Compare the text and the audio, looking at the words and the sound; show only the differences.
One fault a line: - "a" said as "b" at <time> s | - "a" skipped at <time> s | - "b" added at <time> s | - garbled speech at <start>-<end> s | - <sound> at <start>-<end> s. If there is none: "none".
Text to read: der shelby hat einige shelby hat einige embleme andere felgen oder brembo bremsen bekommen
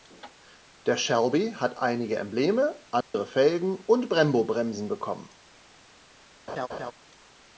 - "shelby hat einige" skipped at 2.2 s
- dropout at 3.0-3.1 s
- "oder" said as "und" at 3.8 s
- laugh at 6.5-6.9 s